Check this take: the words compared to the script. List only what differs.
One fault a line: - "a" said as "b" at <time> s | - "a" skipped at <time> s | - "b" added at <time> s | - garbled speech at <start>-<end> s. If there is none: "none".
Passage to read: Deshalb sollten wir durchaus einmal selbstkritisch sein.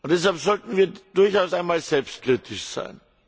none